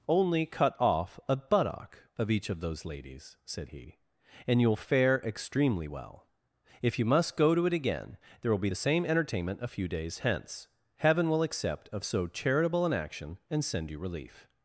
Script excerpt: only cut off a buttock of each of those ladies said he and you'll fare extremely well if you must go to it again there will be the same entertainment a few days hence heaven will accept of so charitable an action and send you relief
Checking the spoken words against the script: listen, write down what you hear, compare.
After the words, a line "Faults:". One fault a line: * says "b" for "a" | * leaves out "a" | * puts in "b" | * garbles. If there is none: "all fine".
only cut off a buttock of each of those ladies said he and you'll fare extremely well if you must go to it again there will be the same entertainment a few days hence heaven will accept of so charitable an action and send you relief
Faults:
all fine